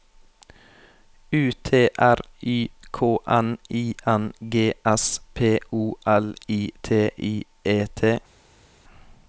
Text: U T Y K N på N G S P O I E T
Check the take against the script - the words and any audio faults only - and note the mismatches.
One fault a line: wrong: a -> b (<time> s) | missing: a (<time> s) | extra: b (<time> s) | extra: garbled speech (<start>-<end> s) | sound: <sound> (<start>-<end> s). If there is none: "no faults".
extra: R (2.0 s)
wrong: på -> I (3.7 s)
extra: L I T (6.1 s)